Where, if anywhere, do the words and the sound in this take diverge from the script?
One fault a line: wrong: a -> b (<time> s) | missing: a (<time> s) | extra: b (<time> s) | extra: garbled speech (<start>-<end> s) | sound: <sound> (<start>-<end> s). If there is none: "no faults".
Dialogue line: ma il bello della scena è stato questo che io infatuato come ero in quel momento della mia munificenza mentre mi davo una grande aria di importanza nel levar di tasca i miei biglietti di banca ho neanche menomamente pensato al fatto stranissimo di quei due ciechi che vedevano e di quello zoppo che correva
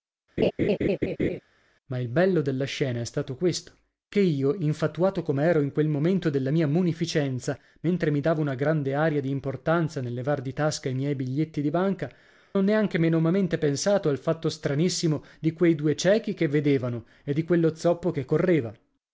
sound: laugh (0.4-1.4 s)